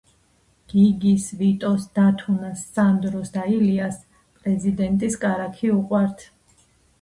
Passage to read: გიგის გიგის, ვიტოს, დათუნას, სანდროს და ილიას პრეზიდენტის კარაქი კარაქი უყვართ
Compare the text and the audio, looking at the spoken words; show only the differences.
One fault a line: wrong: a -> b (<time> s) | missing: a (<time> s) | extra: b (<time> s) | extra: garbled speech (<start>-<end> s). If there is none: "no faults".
missing: გიგის (1.2 s)
missing: კარაქი (5.7 s)